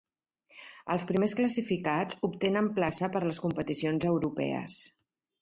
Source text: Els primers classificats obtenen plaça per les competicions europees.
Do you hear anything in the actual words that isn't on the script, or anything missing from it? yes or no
no